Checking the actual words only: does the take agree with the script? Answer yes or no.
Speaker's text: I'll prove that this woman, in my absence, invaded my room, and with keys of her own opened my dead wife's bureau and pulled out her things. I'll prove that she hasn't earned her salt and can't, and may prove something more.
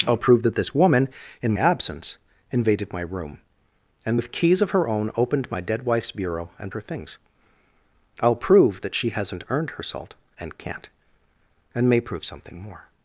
no